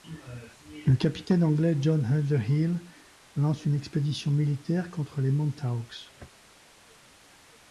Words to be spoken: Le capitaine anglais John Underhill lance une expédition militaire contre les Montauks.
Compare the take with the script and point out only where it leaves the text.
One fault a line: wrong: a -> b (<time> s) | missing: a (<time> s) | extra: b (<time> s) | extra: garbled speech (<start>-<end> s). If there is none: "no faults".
no faults